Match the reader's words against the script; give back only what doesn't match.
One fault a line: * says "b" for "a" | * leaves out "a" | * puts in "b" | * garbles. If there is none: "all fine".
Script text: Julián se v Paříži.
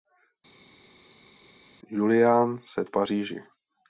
all fine